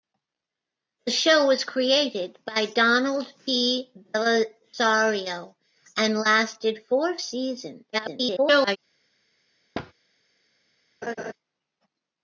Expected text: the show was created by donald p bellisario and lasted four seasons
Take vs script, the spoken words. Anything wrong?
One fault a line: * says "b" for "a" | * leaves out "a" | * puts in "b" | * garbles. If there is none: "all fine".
* garbles